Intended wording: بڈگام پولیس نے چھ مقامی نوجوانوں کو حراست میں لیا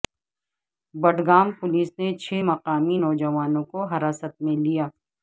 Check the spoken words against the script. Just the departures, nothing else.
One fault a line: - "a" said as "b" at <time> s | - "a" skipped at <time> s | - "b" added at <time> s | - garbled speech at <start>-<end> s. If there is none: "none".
none